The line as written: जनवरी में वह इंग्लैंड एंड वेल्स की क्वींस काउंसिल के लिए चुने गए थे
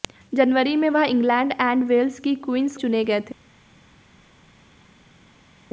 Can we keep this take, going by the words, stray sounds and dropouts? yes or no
no